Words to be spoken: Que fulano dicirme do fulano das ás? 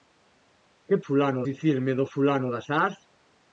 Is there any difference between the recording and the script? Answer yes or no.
no